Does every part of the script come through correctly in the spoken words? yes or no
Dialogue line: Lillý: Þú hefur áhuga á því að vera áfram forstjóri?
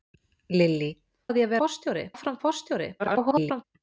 no